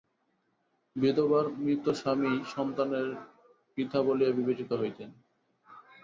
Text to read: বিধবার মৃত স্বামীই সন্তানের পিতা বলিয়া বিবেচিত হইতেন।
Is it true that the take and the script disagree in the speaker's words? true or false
false